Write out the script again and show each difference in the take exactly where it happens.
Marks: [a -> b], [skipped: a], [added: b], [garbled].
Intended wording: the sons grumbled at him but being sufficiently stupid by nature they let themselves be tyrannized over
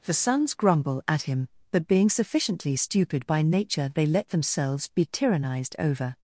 the sons [grumbled -> grumble] at him but being sufficiently stupid by nature they let themselves be tyrannized over